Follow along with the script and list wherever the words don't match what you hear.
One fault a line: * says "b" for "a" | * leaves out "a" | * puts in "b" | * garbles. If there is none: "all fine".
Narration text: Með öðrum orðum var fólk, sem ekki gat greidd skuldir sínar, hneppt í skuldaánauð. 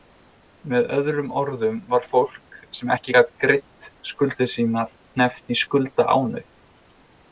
all fine